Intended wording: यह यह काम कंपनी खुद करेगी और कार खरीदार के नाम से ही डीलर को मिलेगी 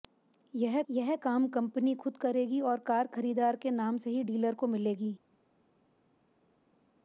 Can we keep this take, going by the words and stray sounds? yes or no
yes